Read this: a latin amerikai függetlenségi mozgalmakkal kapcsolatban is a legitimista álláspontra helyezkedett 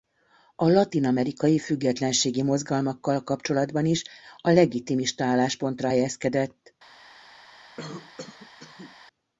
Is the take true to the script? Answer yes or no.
yes